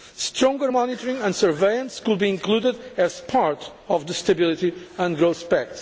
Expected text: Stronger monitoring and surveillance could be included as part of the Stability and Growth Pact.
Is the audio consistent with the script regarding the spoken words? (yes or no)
yes